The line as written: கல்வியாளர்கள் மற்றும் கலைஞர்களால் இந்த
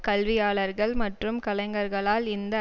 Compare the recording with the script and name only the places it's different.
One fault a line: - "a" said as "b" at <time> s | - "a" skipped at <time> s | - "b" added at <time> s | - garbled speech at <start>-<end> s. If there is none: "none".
none